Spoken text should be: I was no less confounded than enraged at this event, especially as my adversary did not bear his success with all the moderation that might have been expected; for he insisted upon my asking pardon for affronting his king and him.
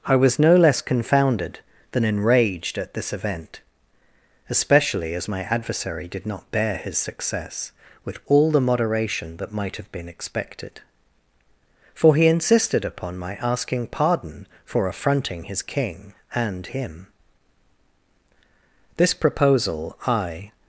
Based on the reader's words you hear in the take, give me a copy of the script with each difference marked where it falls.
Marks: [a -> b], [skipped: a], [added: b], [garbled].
I was no less confounded than enraged at this event, especially as my adversary did not bear his success with all the moderation that might have been expected; for he insisted upon my asking pardon for affronting his king and him. [added: This proposal I]